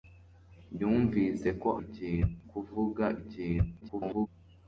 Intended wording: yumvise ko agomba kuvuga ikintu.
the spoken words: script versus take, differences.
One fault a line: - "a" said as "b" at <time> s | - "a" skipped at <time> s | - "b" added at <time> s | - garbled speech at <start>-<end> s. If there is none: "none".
- "agomba" said as "ikintu" at 1.8 s
- garbled speech at 3.8-4.3 s